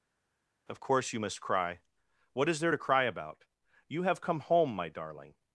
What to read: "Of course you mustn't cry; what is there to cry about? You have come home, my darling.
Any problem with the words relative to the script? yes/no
yes